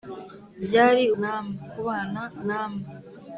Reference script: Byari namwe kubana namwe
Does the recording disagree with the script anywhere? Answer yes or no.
no